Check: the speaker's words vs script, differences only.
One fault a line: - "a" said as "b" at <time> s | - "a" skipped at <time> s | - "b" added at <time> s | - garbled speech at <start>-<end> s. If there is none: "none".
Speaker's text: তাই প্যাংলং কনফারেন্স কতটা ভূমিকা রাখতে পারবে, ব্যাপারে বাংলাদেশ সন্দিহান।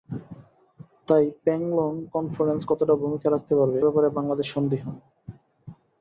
none